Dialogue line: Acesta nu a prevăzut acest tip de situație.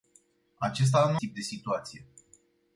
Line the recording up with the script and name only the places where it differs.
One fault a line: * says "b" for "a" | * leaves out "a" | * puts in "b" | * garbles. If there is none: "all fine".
* leaves out "a prevăzut acest"